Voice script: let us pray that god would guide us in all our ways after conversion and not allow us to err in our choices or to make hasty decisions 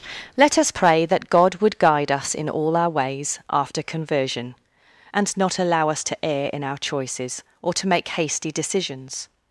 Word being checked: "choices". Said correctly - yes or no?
yes